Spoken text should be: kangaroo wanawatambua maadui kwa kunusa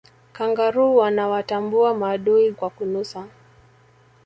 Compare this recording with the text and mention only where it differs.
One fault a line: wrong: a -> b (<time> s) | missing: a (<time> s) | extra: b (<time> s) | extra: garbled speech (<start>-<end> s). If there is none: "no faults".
no faults